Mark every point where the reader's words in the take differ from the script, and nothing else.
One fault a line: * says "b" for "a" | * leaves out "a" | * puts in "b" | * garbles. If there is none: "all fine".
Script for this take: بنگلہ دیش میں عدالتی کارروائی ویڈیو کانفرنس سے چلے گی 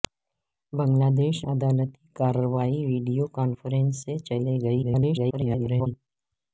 * leaves out "میں"
* garbles